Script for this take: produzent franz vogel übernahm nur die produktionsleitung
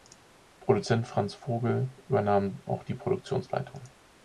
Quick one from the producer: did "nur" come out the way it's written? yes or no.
no